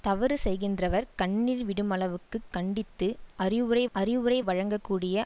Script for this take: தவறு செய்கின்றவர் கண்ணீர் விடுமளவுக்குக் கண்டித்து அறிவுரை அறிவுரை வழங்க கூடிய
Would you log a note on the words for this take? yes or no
no